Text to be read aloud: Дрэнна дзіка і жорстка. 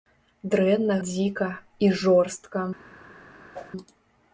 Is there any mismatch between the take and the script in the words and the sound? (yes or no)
yes